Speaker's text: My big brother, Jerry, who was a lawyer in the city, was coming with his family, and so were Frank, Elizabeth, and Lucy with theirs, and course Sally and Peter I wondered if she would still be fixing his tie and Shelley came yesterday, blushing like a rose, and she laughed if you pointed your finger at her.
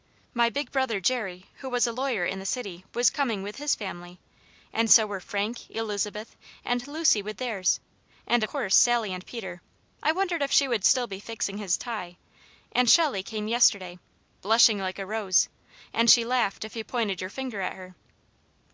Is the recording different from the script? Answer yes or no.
no